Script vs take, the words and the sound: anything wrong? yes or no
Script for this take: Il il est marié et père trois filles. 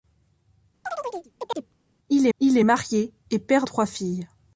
yes